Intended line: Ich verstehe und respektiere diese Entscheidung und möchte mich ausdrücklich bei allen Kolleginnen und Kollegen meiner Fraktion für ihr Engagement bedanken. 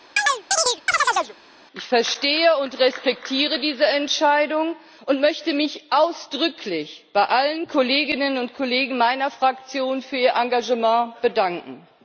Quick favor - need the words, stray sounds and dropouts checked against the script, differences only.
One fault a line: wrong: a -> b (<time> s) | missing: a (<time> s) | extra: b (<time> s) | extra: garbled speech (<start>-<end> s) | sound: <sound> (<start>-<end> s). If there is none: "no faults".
sound: chirp (0.2-1.4 s)